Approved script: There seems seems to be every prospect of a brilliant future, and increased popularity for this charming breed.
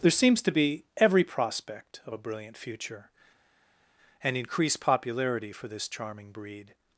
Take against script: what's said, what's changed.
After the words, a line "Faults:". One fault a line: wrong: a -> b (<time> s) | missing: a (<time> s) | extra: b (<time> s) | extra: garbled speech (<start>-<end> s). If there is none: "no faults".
There seems to be every prospect of a brilliant future, and increased popularity for this charming breed.
Faults:
missing: seems (0.4 s)